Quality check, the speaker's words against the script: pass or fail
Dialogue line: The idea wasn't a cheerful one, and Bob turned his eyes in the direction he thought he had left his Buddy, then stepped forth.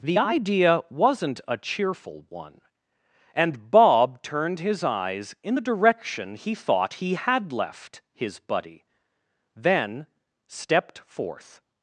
pass